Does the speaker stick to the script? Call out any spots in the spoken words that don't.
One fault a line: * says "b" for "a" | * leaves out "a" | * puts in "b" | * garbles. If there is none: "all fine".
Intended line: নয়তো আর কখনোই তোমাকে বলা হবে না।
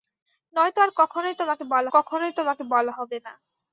* puts in "কখনোই তোমাকে বলা"